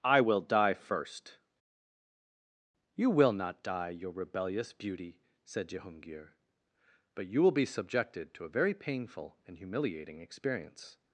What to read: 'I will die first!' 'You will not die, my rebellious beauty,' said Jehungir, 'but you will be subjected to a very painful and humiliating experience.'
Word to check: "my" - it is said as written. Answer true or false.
false